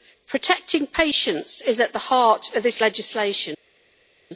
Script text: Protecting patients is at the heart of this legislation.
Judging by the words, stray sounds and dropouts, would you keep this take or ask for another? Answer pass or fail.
pass